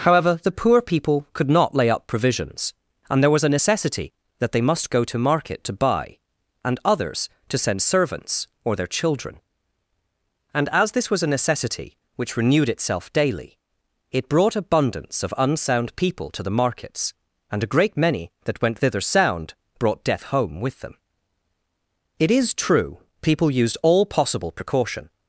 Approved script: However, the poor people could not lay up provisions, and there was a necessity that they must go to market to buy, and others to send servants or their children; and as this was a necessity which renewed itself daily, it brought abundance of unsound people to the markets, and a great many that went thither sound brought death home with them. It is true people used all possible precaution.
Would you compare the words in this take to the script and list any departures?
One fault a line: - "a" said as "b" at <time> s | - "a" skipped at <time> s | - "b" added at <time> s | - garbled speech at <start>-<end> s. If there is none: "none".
none